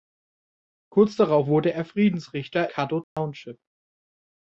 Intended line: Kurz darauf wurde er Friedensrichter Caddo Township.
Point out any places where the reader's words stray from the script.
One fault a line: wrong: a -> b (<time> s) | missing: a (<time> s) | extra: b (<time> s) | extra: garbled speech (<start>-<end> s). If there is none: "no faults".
no faults